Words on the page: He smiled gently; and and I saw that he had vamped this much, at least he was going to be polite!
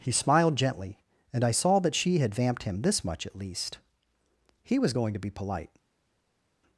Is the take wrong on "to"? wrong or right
right